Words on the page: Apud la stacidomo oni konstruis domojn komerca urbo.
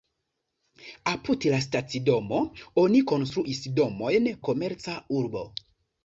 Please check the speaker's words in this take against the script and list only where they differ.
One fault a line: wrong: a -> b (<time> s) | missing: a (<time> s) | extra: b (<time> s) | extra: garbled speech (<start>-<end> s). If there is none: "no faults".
no faults